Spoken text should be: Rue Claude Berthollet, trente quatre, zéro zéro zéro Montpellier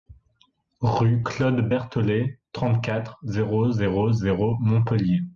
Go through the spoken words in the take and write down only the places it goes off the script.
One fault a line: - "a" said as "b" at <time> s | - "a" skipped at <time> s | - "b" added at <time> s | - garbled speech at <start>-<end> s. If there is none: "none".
none